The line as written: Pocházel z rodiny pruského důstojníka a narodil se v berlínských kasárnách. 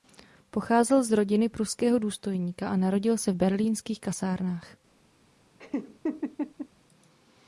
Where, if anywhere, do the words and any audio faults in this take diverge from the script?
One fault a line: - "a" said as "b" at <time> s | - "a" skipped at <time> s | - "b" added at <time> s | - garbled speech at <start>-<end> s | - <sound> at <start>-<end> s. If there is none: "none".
- laugh at 5.6-6.7 s